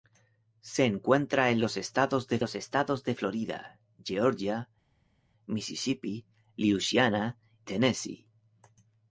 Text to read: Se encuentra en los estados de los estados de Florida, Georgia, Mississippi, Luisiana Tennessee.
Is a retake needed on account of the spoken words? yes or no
no